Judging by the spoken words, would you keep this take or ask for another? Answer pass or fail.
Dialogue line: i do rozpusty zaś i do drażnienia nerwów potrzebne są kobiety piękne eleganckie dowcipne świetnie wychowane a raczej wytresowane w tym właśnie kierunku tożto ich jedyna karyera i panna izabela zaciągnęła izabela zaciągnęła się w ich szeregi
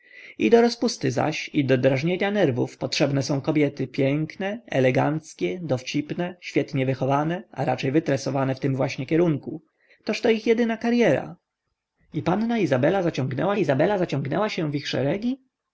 pass